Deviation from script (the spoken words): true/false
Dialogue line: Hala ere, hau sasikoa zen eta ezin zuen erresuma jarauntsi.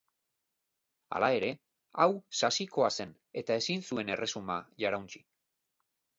false